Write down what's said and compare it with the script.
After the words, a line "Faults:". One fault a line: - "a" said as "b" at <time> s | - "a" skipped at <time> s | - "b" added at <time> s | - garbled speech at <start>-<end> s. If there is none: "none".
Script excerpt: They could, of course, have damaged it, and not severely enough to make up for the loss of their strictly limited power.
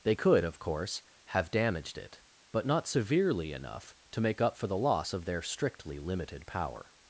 They could, of course, have damaged it, but not severely enough to make up for the loss of their strictly limited power.
Faults:
- "and" said as "but" at 2.5 s